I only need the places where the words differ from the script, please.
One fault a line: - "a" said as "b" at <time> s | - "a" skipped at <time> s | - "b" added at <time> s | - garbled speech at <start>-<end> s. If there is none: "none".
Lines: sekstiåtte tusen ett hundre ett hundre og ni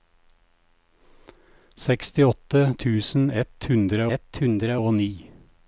none